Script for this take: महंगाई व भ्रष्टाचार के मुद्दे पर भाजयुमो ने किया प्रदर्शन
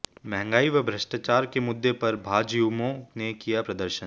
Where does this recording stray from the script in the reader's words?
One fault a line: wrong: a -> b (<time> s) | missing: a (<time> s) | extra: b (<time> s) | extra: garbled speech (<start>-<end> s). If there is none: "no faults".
no faults